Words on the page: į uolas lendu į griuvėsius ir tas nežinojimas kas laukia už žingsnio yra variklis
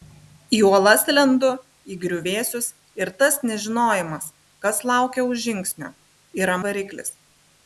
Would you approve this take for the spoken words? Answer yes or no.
yes